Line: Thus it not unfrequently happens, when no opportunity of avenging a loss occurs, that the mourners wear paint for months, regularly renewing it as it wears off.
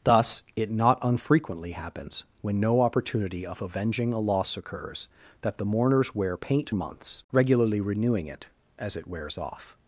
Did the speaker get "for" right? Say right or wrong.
wrong